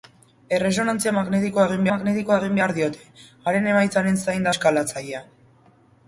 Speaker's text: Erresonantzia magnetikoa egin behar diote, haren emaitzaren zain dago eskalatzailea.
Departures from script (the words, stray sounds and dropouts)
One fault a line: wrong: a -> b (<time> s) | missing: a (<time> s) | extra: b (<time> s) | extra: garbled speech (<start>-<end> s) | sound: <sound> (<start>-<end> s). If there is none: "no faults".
extra: magnetikoa egin (1.9 s)
missing: dago (4.5 s)